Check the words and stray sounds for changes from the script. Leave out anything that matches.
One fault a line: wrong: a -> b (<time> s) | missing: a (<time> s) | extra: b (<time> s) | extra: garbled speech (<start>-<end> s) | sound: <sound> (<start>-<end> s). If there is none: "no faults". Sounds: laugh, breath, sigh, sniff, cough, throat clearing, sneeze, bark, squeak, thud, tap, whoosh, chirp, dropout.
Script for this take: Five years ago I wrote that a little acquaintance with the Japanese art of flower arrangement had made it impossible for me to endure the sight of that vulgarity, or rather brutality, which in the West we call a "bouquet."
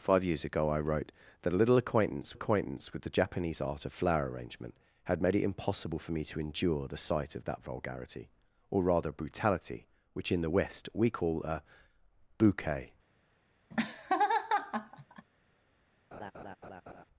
extra: acquaintance (2.3 s)
sound: laugh (13.7-15.3 s)
sound: laugh (16.1-17.1 s)